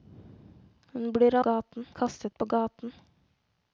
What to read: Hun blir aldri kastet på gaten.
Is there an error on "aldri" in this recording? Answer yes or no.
yes